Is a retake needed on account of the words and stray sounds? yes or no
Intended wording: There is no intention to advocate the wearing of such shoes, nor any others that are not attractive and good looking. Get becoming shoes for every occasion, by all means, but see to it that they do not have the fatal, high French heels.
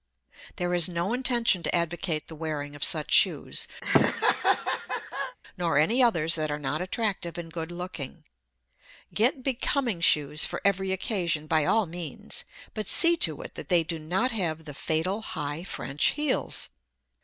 yes